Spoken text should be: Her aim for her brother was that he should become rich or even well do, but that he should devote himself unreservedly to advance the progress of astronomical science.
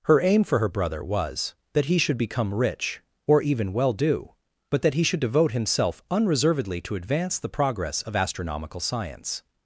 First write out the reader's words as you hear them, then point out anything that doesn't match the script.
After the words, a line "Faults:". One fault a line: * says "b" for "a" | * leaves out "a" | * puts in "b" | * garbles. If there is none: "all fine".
Her aim for her brother was that he should become rich or even well do, but that he should devote himself unreservedly to advance the progress of astronomical science.
Faults:
all fine